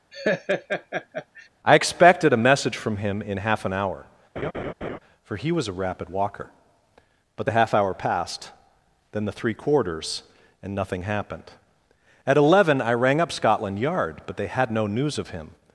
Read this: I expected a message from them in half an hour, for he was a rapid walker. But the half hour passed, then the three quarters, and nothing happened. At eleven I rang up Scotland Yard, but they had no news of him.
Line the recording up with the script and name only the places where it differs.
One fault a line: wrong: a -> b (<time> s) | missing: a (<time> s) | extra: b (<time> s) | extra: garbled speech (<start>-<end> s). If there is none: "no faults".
wrong: them -> him (3.0 s)